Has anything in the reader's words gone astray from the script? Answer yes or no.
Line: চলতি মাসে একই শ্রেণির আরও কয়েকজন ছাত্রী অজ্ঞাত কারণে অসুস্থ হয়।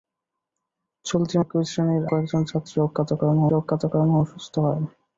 yes